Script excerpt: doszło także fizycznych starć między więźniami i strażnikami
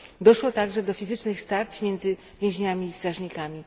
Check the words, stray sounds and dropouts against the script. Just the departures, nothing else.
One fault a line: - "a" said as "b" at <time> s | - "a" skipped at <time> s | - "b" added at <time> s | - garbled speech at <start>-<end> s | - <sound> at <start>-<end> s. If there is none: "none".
- "do" added at 0.8 s